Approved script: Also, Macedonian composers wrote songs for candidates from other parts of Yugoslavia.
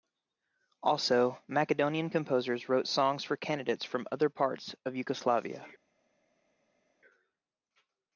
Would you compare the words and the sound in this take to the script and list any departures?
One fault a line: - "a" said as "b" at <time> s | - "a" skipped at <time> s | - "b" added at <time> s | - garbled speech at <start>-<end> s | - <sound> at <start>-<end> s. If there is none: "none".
none